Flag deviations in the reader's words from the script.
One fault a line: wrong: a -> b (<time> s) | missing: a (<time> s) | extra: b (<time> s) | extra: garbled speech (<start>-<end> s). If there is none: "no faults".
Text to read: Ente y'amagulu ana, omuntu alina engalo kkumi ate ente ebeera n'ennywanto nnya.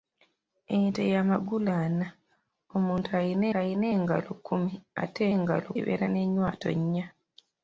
extra: alina (3.6 s)
wrong: ente -> engalo (5.4 s)